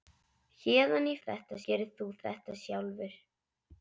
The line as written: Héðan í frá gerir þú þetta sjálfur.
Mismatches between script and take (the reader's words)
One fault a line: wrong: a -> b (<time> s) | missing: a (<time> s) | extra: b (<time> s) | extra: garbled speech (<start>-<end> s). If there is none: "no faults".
wrong: frá -> þetta (1.2 s)